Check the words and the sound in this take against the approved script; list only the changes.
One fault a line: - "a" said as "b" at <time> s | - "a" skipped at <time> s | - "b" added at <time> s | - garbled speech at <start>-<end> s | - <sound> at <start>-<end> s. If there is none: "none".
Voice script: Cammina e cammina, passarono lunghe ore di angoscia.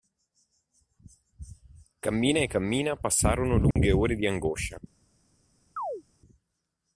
- dropout at 3.7-3.8 s
- chirp at 5.8-6.0 s